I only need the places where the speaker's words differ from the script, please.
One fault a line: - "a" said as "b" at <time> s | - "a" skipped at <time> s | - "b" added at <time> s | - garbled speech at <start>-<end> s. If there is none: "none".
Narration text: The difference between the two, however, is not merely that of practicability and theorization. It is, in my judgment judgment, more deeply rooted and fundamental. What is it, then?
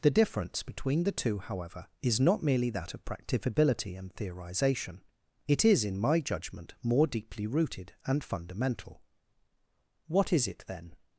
- "judgment" skipped at 6.7 s